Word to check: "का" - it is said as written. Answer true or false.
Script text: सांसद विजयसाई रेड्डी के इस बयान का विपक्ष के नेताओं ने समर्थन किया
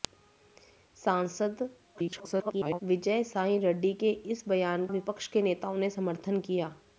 false